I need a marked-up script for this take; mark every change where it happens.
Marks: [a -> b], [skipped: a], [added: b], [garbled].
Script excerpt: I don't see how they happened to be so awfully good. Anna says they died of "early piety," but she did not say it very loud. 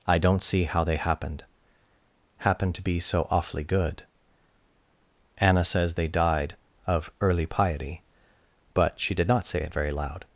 I don't see how they happened [added: happened] to be so awfully good. Anna says they died of "early piety," but she did not say it very loud.